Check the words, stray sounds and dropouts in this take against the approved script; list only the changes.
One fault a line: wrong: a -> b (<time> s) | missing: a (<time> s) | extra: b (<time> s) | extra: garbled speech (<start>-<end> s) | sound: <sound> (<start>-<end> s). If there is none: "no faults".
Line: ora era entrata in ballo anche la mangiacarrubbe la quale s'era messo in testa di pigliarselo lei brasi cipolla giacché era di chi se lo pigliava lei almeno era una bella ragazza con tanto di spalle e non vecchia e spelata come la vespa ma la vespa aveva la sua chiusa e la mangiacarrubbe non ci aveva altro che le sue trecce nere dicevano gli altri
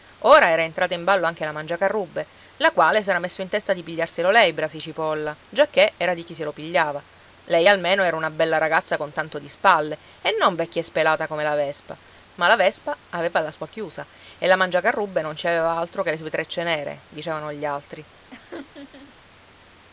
sound: laugh (18.3-19.2 s)